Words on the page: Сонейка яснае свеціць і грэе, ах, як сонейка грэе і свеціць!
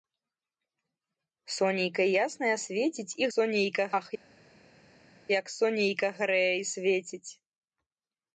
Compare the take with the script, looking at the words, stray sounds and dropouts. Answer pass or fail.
fail